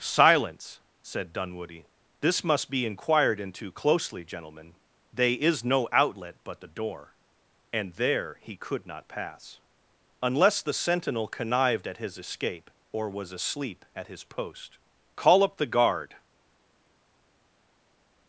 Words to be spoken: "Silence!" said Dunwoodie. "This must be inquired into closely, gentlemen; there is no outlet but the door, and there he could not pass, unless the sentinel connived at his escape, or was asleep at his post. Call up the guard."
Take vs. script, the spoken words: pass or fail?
fail